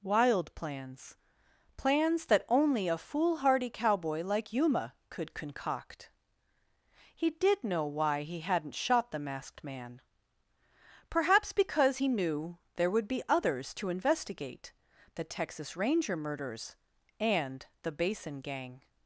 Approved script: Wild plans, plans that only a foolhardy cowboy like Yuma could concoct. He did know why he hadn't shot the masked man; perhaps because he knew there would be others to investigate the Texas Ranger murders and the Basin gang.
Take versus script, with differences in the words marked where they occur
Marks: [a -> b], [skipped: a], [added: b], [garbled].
Wild plans, plans that only a foolhardy cowboy like Yuma could concoct. He did know why he hadn't shot the masked man; perhaps because he knew there would be others to investigate the Texas Ranger murders and the Basin gang.